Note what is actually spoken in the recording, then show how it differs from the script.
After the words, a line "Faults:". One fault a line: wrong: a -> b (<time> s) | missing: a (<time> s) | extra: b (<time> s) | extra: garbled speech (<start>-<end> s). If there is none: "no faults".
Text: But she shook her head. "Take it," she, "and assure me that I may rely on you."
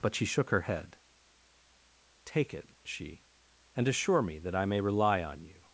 But she shook her head. "Take it," she, "and assure me that I may rely on you."
Faults:
no faults